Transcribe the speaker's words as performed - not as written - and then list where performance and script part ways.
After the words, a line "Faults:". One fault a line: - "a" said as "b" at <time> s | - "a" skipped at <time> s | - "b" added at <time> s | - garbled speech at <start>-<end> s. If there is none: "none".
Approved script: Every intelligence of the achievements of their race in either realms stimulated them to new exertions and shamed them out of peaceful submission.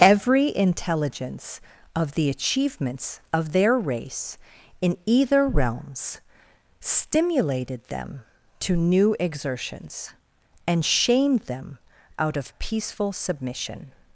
Every intelligence of the achievements of their race in either realms stimulated them to new exertions and shamed them out of peaceful submission.
Faults:
none